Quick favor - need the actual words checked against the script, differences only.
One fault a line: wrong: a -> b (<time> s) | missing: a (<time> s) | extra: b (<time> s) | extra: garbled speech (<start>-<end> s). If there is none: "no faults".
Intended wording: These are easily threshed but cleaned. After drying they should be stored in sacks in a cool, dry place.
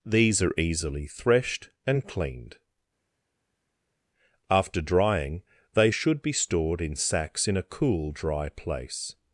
wrong: but -> and (1.9 s)